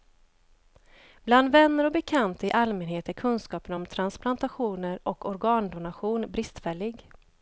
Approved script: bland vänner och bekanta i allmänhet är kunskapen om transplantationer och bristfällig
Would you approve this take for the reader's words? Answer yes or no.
no